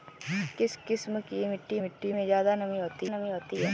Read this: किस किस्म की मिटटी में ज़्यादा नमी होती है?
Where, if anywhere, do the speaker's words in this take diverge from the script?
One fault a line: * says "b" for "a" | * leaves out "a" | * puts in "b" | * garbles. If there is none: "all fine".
* puts in "मिटटी"
* puts in "नमी होती"